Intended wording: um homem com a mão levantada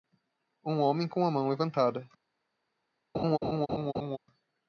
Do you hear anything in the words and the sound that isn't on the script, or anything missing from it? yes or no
yes